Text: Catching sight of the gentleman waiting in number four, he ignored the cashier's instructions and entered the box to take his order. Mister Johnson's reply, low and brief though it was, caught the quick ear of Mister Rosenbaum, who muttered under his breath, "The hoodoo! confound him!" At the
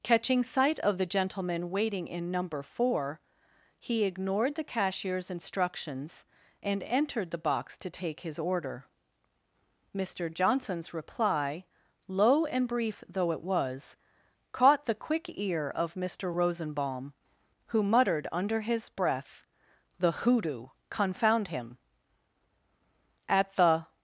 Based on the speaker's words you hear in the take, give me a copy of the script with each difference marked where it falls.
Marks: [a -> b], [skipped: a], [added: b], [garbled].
Catching sight of the gentleman waiting in number four, he ignored the cashier's instructions and entered the box to take his order. Mister Johnson's reply, low and brief though it was, caught the quick ear of Mister Rosenbaum, who muttered under his breath, "The hoodoo! confound him!" At the